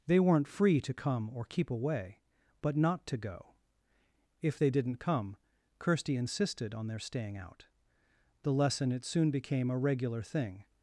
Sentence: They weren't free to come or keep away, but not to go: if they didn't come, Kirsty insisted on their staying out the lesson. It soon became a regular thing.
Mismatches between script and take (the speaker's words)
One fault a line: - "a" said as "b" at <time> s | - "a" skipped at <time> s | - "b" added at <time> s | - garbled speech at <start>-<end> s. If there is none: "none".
none